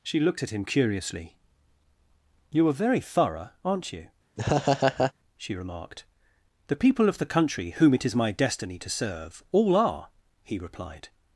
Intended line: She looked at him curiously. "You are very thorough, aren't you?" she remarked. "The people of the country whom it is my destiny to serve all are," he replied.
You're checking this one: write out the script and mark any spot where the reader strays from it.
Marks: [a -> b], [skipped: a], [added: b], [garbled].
She looked at him curiously. "You are very thorough, aren't you?" she remarked. "The people of the country whom it is my destiny to serve all are," he replied.